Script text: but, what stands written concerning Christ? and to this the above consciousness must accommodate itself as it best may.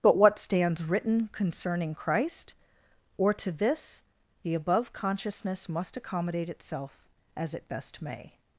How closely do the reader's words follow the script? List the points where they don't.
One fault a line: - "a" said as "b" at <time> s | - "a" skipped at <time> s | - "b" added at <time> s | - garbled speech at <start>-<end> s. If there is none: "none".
- "and" said as "or" at 3.2 s